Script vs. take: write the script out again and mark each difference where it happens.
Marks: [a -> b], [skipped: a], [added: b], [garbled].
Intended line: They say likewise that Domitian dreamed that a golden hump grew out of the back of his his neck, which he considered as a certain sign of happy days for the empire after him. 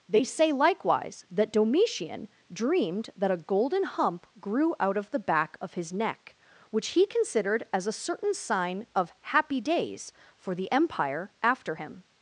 They say likewise that Domitian dreamed that a golden hump grew out of the back of his [skipped: his] neck, which he considered as a certain sign of happy days for the empire after him.